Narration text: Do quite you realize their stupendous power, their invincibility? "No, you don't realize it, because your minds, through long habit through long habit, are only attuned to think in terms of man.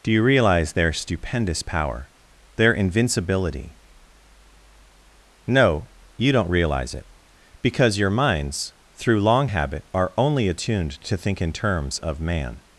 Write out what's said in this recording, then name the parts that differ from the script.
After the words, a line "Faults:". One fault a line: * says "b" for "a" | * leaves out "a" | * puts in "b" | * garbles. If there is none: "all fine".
Do you realize their stupendous power, their invincibility? "No, you don't realize it, because your minds, through long habit, are only attuned to think in terms of man.
Faults:
* leaves out "quite"
* leaves out "through long habit"